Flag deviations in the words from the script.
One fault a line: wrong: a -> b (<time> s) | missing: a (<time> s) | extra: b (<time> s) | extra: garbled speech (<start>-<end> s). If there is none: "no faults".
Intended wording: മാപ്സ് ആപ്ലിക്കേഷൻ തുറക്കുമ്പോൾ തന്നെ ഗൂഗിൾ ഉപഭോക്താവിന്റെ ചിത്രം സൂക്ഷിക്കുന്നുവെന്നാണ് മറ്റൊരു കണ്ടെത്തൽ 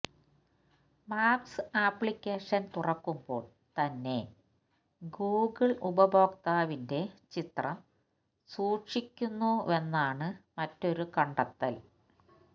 no faults